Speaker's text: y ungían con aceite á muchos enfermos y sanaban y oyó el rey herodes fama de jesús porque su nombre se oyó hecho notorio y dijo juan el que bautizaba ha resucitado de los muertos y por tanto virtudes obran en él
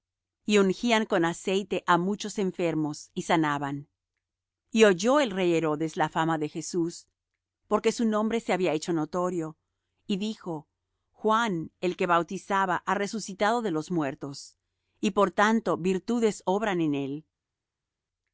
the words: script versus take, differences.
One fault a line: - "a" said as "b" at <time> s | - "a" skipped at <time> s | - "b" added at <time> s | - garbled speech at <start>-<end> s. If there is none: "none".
- "la" added at 6.0 s
- "oyó" said as "había" at 8.5 s